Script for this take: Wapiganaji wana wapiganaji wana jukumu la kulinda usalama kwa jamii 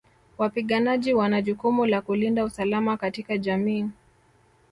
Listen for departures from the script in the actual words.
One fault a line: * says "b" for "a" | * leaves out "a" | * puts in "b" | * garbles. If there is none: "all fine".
* leaves out "wapiganaji wana"
* says "katika" for "kwa"